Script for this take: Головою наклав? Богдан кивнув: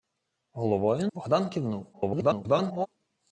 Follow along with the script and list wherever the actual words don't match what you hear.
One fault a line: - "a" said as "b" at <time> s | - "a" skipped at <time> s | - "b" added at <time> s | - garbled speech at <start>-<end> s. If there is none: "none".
- "наклав" skipped at 1.1 s
- garbled speech at 1.9-2.9 s